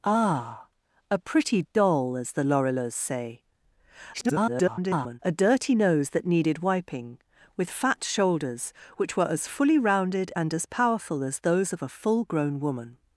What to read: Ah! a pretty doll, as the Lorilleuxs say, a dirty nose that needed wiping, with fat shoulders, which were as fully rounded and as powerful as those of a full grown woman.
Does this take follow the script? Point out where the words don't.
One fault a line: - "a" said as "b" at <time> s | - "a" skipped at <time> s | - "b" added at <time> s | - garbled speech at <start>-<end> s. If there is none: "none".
- garbled speech at 4.1-5.2 s